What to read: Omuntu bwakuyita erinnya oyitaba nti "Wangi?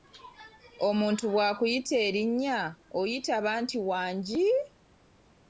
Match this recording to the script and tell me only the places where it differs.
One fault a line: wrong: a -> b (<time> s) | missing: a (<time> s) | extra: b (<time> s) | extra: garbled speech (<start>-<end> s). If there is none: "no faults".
no faults